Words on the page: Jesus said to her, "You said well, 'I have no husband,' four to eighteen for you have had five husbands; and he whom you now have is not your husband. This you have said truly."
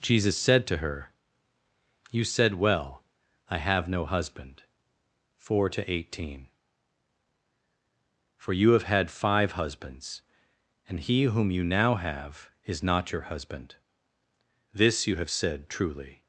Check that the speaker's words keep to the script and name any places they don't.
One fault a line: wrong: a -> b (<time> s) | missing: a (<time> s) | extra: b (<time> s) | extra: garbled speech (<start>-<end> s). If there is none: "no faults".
no faults